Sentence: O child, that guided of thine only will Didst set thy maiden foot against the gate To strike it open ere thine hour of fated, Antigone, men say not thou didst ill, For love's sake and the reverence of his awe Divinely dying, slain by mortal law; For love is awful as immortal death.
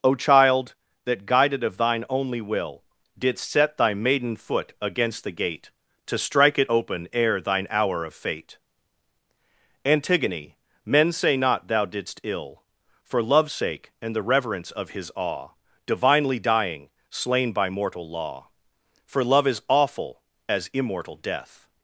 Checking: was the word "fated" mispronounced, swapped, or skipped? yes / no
yes